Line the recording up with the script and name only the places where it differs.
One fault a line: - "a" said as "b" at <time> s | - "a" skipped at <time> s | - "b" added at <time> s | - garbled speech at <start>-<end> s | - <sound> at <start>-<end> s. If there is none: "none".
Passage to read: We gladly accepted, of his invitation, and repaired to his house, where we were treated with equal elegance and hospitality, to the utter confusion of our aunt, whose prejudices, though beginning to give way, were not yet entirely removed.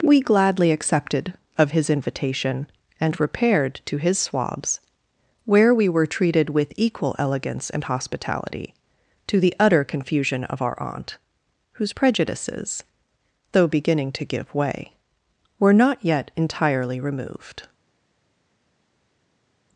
- "house" said as "swabs" at 4.2 s